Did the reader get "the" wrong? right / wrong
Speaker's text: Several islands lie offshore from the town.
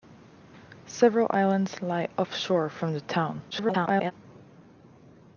right